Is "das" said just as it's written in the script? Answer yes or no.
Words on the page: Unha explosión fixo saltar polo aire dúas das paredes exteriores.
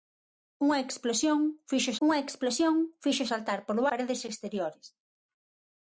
no